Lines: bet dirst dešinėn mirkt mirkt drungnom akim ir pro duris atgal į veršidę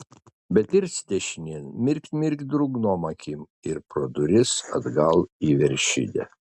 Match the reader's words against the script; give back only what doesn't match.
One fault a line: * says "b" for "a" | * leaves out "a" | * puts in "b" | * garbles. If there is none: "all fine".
all fine